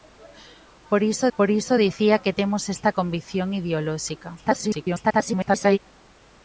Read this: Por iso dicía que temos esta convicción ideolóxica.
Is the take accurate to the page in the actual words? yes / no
no